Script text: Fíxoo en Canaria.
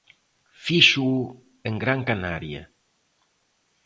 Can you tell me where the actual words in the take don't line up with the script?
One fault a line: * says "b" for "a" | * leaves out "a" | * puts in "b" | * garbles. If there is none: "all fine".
* puts in "Gran"